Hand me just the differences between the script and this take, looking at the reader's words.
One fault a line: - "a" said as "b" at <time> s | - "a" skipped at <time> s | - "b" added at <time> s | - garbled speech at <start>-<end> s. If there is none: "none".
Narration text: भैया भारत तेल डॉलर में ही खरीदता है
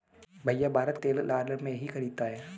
none